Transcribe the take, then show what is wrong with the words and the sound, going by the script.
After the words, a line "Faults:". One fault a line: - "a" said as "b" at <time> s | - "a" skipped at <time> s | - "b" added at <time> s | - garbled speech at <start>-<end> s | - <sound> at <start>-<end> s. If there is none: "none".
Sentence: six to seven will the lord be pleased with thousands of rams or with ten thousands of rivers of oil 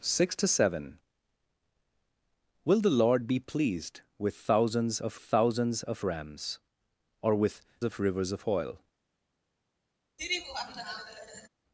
six to seven will the lord be pleased with thousands of thousands of rams or with of rivers of oil
Faults:
- "thousands of" added at 5.2 s
- "ten thousands" skipped at 7.6 s
- laugh at 10.2-11.5 s